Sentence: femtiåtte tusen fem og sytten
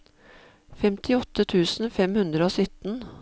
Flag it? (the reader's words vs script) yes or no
yes